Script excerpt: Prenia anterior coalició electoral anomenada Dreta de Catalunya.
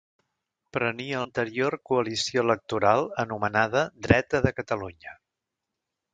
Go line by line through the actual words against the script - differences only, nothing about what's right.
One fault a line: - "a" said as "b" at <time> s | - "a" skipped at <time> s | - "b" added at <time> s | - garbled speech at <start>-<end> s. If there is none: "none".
none